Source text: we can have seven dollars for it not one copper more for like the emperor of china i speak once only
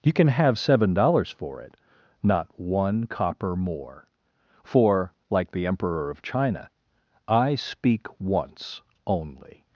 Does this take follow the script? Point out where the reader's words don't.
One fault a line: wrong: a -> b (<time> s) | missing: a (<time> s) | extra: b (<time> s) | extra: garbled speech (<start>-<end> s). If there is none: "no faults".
wrong: we -> you (0.0 s)